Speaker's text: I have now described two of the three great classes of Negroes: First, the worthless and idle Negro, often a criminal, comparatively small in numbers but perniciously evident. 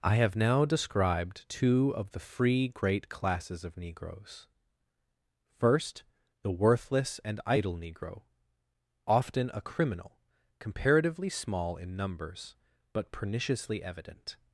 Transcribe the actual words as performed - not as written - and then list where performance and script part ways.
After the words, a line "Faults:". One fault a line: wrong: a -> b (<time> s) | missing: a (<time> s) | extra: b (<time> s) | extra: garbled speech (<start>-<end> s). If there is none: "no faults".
I have now described two of the free great classes of Negroes: First, the worthless and idle Negro, often a criminal, comparatively small in numbers but perniciously evident.
Faults:
wrong: three -> free (2.2 s)